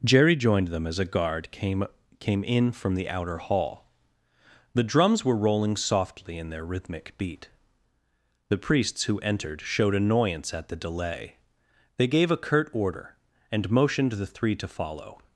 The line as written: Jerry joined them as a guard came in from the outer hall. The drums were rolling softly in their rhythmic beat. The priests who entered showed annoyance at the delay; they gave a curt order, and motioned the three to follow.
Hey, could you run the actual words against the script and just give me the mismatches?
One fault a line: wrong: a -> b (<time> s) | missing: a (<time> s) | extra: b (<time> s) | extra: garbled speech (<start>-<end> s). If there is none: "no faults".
extra: came (2.2 s)